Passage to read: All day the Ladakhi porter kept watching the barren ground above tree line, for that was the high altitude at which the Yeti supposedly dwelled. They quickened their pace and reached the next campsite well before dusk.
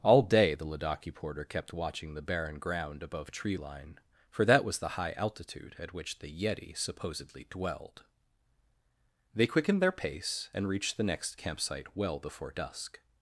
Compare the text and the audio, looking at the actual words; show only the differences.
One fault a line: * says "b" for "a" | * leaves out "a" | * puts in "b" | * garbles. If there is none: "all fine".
all fine